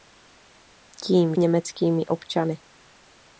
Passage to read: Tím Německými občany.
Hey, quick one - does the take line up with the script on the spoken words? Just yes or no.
yes